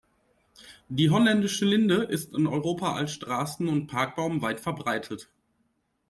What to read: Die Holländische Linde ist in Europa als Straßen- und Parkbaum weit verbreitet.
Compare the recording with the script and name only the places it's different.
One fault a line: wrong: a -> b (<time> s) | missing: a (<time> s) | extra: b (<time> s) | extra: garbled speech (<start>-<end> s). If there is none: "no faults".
no faults